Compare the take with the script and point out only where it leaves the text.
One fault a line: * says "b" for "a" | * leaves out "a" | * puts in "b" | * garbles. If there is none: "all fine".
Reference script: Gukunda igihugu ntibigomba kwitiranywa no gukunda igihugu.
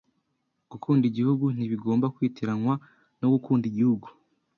all fine